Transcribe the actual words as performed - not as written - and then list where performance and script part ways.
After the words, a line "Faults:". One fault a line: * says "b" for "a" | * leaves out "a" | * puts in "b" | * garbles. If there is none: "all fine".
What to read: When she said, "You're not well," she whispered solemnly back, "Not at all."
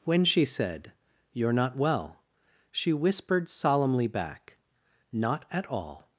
When she said, "You're not well," she whispered solemnly back, "Not at all."
Faults:
all fine